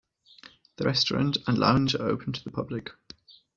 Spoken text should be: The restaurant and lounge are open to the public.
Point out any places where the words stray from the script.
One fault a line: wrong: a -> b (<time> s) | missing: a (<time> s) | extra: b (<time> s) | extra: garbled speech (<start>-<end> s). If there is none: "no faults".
no faults